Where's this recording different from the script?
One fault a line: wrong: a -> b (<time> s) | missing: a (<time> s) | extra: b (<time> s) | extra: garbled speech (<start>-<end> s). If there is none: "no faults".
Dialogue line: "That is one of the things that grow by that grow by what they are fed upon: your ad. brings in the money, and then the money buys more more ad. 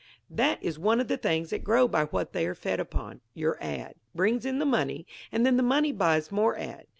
missing: that grow by (2.0 s)
missing: more (6.6 s)